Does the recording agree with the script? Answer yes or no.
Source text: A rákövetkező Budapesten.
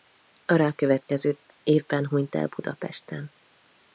no